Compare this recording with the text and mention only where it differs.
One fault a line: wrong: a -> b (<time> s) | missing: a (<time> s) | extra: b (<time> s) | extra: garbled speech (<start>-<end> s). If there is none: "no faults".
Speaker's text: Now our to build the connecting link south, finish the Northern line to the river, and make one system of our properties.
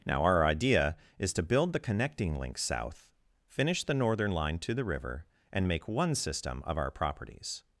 extra: idea is (0.5 s)